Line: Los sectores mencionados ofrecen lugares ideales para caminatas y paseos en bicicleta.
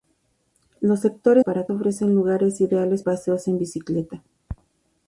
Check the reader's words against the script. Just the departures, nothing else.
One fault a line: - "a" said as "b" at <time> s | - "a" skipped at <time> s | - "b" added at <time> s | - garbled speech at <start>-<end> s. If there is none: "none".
- "mencionados" said as "para" at 1.4 s
- "para caminatas y" skipped at 3.0 s